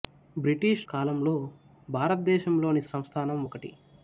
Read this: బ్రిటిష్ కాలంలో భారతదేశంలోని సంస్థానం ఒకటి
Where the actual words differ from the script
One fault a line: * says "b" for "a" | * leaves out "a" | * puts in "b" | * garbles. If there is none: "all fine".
all fine